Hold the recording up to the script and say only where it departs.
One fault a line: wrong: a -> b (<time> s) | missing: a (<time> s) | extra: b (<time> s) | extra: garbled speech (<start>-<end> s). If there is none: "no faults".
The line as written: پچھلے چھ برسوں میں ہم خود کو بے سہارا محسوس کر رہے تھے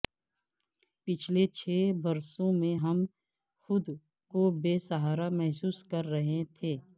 no faults